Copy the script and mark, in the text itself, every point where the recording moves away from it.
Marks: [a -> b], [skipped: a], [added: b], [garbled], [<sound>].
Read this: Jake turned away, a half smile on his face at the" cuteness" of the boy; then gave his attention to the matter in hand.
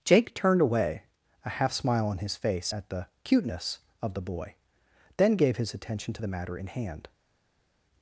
Jake turned away, a half smile on his face at the" cuteness" of the boy; then gave his attention to the matter in hand.